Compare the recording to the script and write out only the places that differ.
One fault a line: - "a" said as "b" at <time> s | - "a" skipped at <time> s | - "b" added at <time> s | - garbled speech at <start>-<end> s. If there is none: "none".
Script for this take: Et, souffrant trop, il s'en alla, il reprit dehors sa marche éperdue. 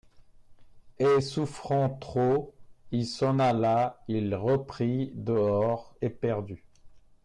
- "sa marche" skipped at 6.0 s